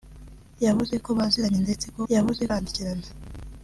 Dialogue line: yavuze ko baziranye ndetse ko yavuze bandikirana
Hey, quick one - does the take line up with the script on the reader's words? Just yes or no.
yes